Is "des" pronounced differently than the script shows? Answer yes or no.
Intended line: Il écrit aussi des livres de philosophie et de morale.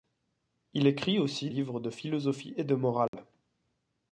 yes